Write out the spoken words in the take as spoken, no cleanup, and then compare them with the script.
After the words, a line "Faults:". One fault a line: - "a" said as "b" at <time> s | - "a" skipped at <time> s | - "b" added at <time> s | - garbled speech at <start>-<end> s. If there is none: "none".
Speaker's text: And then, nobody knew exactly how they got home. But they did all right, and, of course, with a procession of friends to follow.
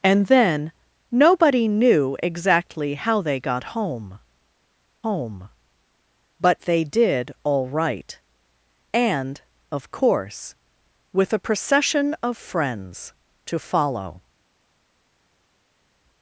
And then, nobody knew exactly how they got home home. But they did all right, and, of course, with a procession of friends to follow.
Faults:
- "home" added at 5.0 s